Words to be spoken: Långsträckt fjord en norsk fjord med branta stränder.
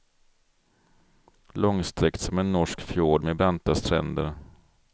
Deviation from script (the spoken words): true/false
true